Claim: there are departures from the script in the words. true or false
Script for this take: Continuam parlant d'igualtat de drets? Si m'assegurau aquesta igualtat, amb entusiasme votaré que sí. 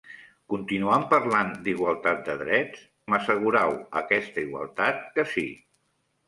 true